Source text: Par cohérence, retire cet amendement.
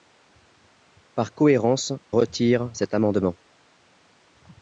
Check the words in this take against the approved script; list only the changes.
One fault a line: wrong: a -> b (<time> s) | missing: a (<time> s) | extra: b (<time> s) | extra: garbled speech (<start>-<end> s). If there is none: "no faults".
no faults